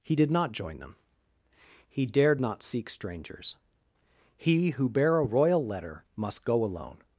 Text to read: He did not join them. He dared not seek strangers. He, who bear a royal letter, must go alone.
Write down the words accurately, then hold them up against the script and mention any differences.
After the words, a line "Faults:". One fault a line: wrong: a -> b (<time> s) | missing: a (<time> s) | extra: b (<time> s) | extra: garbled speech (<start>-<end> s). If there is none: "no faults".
He did not join them. He dared not seek strangers. He, who bear a royal letter, must go alone.
Faults:
no faults